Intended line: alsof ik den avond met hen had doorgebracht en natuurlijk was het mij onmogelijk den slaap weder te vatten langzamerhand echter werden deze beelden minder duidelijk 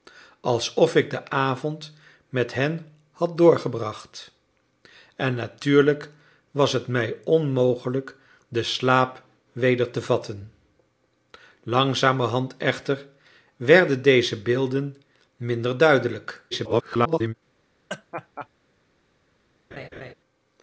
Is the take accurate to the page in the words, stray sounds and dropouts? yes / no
no